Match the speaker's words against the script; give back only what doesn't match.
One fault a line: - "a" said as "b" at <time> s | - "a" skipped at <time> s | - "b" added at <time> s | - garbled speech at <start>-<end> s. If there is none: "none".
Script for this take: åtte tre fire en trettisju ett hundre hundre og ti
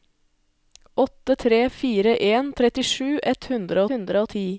none